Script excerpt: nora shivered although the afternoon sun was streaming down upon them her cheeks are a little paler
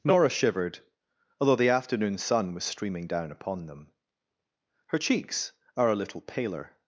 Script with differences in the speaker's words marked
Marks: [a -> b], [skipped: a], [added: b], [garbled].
nora shivered although the afternoon sun was streaming down upon them her cheeks are a little paler